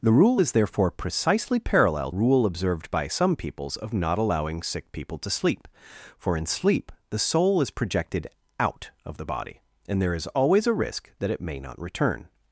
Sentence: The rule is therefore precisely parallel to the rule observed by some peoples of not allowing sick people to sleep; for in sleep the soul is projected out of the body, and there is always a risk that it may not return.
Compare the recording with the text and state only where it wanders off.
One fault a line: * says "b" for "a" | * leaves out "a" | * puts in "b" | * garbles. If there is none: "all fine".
* leaves out "to the"